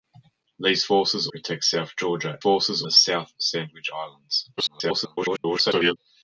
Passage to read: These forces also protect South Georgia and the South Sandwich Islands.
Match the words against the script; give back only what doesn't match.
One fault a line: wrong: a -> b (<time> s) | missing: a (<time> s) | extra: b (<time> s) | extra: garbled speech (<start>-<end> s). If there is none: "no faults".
missing: also (1.3 s)
wrong: and -> forces (2.4 s)
extra: garbled speech (4.6-6.0 s)